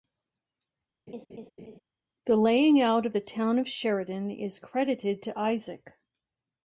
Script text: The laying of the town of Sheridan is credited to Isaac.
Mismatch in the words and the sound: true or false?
true